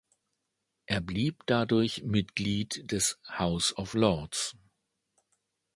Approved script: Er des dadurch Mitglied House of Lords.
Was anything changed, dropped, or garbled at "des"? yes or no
yes